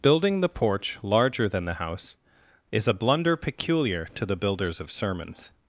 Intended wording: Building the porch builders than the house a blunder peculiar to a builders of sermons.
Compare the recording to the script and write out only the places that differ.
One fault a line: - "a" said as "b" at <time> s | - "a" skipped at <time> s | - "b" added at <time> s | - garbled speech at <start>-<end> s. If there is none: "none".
- "builders" said as "larger" at 1.0 s
- "is" added at 2.7 s
- "a" said as "the" at 4.3 s